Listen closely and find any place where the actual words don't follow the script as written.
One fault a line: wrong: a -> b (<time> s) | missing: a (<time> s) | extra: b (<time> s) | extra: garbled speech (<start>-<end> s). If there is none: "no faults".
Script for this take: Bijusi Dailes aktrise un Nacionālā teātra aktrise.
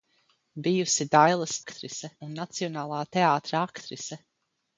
no faults